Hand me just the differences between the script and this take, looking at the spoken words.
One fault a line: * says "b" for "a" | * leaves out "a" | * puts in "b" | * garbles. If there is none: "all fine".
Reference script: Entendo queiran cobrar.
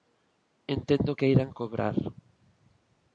all fine